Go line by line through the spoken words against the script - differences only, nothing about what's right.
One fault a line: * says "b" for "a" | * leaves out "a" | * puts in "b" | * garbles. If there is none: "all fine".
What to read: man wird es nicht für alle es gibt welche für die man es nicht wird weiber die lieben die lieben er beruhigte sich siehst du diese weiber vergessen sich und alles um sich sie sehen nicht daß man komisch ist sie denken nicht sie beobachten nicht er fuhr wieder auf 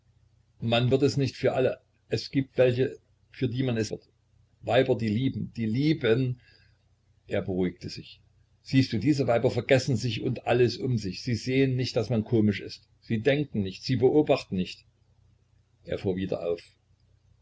* leaves out "nicht"